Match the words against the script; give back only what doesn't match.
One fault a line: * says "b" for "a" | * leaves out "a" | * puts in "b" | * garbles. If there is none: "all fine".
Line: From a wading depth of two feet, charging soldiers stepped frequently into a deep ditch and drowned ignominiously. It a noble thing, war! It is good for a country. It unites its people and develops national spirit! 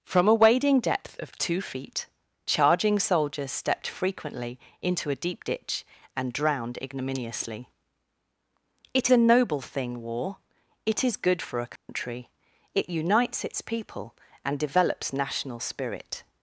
all fine